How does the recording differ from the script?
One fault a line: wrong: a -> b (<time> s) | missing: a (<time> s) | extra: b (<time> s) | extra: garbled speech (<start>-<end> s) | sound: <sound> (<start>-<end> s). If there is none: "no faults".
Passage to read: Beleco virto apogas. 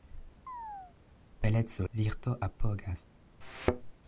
sound: chirp (0.5-1.0 s)
sound: thud (3.4-3.9 s)